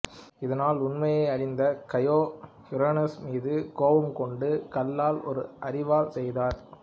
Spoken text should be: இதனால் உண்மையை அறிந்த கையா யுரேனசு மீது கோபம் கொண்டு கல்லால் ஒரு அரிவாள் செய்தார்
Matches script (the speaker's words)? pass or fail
pass